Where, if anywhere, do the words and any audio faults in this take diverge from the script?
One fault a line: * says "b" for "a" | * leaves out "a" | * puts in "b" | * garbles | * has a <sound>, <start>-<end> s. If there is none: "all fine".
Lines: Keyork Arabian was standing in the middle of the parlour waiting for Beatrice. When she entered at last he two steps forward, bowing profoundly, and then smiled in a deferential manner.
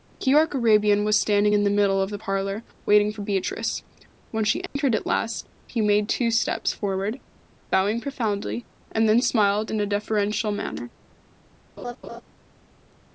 * has a dropout, 4.7-4.8 s
* puts in "made"
* has a laugh, 11.8-12.2 s